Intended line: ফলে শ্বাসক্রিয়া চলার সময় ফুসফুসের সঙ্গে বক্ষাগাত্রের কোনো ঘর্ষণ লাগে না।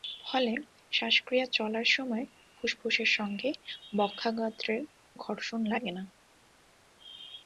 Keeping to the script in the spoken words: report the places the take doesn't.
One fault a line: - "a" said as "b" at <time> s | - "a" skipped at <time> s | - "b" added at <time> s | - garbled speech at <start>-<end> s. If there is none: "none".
- "কোনো" skipped at 4.8 s